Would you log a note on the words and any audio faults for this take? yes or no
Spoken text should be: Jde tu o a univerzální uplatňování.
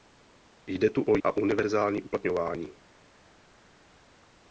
no